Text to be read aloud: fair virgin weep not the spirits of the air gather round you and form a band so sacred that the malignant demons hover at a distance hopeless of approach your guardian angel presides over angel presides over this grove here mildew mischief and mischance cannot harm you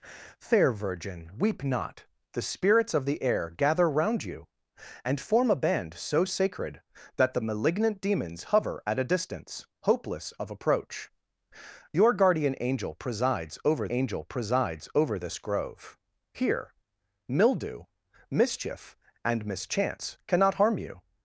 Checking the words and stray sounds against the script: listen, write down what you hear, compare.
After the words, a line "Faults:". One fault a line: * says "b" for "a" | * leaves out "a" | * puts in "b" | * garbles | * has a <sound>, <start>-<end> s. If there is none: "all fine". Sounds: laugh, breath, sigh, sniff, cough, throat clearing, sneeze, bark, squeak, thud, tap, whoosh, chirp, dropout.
fair virgin weep not the spirits of the air gather round you and form a band so sacred that the malignant demons hover at a distance hopeless of approach your guardian angel presides over angel presides over this grove here mildew mischief and mischance cannot harm you
Faults:
all fine